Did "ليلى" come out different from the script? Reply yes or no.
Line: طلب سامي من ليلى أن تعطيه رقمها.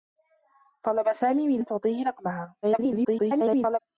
yes